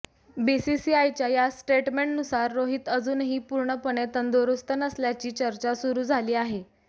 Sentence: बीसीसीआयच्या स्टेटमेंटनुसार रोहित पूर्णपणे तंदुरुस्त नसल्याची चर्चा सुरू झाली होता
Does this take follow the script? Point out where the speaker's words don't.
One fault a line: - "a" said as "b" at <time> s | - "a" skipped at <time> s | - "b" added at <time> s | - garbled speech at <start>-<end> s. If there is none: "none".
- "या" added at 1.3 s
- "अजूनही" added at 2.9 s
- "होता" said as "आहे" at 6.3 s